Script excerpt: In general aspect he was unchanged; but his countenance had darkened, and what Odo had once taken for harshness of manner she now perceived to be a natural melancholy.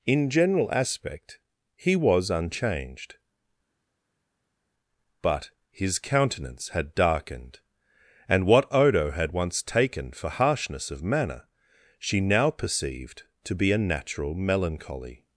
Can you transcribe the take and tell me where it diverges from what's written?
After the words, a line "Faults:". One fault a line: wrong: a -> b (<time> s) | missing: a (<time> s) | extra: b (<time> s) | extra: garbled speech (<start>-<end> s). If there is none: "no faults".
In general aspect he was unchanged; but his countenance had darkened, and what Odo had once taken for harshness of manner she now perceived to be a natural melancholy.
Faults:
no faults